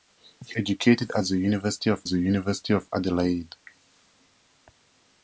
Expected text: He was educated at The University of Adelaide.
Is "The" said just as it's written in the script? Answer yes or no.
yes